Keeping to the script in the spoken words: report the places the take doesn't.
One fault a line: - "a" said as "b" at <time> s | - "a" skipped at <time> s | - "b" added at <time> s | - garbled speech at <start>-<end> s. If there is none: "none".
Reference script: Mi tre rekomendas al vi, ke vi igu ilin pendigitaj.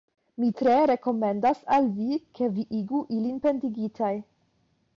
none